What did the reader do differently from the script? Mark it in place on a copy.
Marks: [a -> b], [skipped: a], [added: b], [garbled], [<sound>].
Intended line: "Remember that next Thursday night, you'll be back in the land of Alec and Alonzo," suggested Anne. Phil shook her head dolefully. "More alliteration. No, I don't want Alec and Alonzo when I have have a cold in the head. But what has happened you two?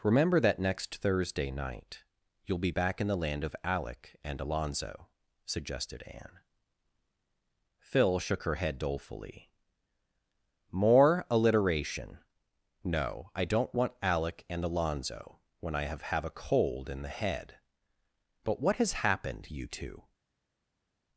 "Remember that next Thursday night, you'll be back in the land of Alec and Alonzo," suggested Anne. Phil shook her head dolefully. "More alliteration. No, I don't want Alec and Alonzo when I have have a cold in the head. But what has happened you two?